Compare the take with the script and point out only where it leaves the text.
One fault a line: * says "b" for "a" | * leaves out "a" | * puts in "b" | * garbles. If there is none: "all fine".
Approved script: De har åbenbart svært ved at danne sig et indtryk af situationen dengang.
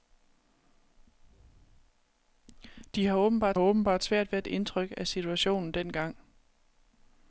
* puts in "åbenbart"
* leaves out "danne sig"